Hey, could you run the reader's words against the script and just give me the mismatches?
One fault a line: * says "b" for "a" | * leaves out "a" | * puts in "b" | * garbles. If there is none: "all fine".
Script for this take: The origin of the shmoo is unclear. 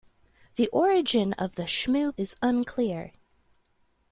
all fine